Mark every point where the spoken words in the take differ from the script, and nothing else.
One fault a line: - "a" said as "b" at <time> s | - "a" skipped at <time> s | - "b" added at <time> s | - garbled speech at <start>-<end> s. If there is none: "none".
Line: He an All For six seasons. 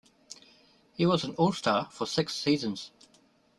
- "was" added at 1.1 s
- "Star" added at 1.5 s